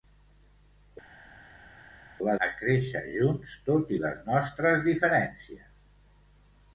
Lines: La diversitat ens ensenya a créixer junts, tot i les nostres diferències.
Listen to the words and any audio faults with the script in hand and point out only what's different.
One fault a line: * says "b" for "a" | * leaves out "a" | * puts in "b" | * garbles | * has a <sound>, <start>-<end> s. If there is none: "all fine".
* leaves out "diversitat ens ensenya"